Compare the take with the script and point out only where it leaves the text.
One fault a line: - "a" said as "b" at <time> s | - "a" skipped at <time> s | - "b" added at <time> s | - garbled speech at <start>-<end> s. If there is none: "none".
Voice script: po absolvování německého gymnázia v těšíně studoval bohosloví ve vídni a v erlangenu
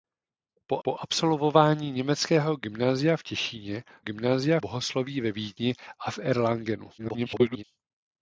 - "po" added at 0.8 s
- "studoval" said as "gymnázia" at 4.0 s
- garbled speech at 7.0-7.6 s